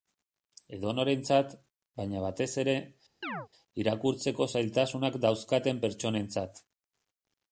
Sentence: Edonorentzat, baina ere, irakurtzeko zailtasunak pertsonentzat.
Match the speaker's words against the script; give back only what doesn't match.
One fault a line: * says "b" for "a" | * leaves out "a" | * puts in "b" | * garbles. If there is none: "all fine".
* puts in "batez"
* puts in "dauzkaten"